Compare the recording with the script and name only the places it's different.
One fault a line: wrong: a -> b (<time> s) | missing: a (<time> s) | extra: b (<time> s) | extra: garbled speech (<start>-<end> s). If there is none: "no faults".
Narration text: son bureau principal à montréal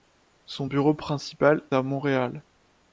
no faults